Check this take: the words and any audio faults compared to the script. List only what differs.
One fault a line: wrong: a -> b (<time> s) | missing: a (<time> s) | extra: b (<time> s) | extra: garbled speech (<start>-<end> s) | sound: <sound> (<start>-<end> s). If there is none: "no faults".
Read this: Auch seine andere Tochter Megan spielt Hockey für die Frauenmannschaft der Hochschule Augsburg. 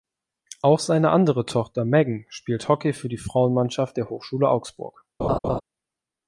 sound: laugh (5.2-5.6 s)